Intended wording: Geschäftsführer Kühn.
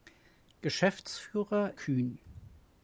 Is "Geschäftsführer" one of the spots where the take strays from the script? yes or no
no